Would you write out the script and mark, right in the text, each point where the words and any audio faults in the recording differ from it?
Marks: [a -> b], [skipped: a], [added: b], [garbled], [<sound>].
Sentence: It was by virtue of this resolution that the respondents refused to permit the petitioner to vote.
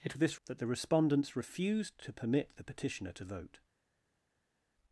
It [skipped: was by virtue] of this [skipped: resolution] that the respondents refused to permit the petitioner to vote.